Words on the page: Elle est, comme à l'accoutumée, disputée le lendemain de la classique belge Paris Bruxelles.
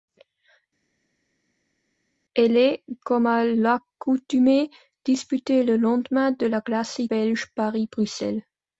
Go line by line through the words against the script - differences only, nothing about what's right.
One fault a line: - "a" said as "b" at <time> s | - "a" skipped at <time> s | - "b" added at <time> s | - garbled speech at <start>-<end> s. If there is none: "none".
none